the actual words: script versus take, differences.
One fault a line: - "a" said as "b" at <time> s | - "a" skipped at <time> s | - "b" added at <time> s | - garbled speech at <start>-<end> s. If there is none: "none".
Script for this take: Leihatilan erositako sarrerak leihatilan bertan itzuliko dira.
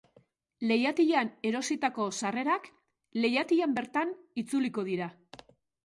none